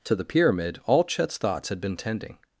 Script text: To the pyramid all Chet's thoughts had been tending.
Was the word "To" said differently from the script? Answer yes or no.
no